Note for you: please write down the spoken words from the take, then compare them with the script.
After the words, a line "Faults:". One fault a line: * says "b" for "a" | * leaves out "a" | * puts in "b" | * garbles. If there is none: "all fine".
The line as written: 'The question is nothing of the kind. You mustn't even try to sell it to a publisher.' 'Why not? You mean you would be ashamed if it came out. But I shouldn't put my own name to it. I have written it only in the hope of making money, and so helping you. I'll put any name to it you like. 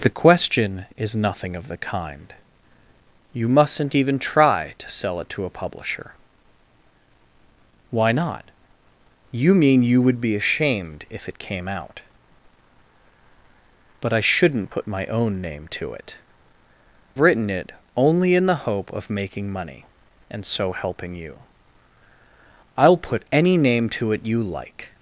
'The question is nothing of the kind. You mustn't even try to sell it to a publisher.' 'Why not? You mean you would be ashamed if it came out. But I shouldn't put my own name to it. written it only in the hope of making money, and so helping you. I'll put any name to it you like.
Faults:
* leaves out "I have"